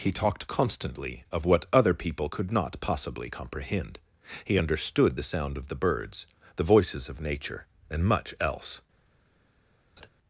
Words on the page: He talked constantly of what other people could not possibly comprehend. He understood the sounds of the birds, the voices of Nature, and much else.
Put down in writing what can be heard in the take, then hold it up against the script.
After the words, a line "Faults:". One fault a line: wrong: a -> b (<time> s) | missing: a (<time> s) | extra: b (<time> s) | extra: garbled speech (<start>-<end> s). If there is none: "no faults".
He talked constantly of what other people could not possibly comprehend. He understood the sound of the birds, the voices of Nature, and much else.
Faults:
wrong: sounds -> sound (5.2 s)